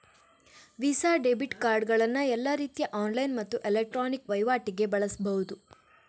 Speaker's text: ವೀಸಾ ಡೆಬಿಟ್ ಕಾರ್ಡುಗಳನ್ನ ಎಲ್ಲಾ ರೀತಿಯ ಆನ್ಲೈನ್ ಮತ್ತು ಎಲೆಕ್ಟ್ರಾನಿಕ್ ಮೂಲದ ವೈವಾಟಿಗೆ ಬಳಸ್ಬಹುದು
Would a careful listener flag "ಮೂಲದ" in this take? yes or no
yes